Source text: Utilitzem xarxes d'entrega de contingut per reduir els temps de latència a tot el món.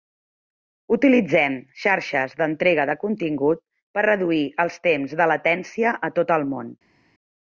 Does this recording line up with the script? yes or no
yes